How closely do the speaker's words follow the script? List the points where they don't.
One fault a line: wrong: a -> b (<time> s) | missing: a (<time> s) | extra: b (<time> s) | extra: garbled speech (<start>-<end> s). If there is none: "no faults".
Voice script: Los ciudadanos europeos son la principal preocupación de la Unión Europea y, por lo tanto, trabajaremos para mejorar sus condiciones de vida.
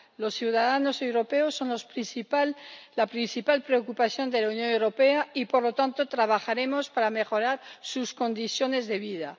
no faults